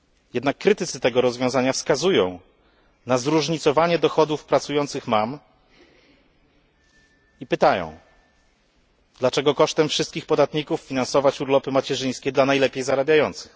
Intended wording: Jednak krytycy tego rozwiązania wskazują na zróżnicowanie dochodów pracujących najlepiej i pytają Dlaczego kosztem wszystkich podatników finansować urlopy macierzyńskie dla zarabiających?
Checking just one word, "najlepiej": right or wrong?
wrong